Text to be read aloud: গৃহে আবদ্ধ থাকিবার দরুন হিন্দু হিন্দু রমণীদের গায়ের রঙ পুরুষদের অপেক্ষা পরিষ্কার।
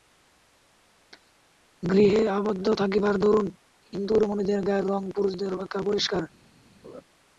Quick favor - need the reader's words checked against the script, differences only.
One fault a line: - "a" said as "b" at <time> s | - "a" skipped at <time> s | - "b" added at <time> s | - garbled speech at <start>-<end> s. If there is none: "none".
- "হিন্দু" skipped at 4.2 s